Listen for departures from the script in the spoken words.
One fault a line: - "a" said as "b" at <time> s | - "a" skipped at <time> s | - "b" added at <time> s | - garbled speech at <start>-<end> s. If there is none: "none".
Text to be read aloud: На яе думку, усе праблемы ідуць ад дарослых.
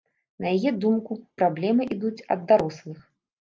- "усе" skipped at 1.2 s